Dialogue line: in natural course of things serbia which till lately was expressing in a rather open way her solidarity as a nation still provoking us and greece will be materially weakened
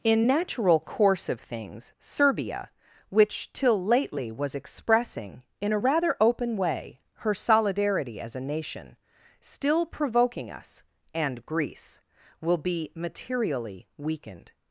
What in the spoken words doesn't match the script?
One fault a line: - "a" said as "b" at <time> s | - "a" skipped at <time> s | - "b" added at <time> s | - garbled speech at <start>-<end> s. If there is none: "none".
none